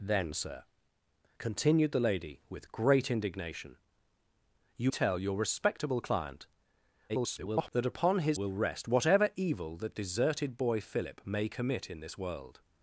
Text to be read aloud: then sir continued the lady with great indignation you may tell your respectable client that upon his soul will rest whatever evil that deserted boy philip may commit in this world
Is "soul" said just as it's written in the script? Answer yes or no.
no